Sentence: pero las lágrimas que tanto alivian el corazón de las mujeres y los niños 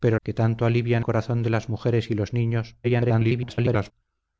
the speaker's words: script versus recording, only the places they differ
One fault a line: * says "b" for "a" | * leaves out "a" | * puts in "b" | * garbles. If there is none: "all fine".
* leaves out "las lágrimas"
* leaves out "el"
* garbles